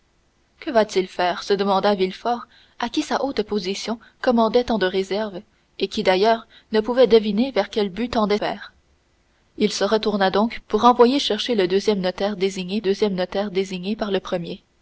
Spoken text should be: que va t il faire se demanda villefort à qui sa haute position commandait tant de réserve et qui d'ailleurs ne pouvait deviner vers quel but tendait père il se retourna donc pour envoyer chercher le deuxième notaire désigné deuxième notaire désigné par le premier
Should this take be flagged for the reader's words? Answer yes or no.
no